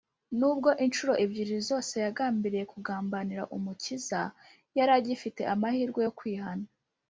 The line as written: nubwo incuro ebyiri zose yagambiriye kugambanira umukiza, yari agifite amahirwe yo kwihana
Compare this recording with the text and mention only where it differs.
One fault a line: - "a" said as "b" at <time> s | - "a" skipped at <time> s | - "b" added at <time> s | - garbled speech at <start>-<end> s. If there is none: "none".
none